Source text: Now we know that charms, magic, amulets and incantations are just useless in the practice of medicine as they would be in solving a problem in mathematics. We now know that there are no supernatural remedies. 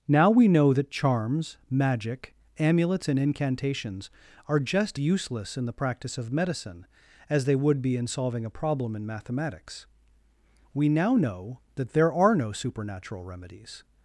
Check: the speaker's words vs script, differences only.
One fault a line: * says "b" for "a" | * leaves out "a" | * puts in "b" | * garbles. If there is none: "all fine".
all fine